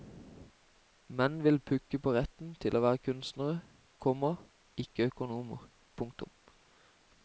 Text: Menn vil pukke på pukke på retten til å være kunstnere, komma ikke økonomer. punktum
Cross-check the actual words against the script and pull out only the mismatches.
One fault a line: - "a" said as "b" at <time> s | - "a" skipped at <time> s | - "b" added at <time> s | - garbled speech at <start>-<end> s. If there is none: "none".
- "pukke på" skipped at 2.1 s